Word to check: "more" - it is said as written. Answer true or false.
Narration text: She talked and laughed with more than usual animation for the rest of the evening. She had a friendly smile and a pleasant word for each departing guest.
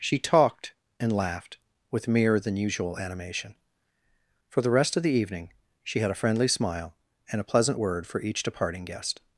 false